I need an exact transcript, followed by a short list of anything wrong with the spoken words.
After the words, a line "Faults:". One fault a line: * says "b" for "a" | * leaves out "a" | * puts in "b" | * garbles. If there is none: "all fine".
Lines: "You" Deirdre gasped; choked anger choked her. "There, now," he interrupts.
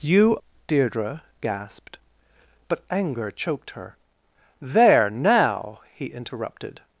"You" Deirdre gasped; but anger choked her. "There, now," he interrupted.
Faults:
* says "but" for "choked"
* says "interrupted" for "interrupts"